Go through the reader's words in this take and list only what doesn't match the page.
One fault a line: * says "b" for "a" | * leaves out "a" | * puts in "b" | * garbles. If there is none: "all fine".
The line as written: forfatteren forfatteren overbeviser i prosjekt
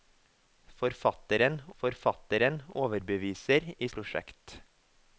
all fine